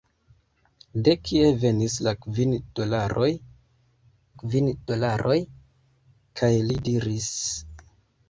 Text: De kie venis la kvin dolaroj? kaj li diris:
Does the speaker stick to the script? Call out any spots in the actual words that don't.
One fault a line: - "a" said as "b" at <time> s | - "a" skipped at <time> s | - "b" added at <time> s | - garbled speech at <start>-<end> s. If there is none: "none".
- "kvin dolaroj" added at 4.4 s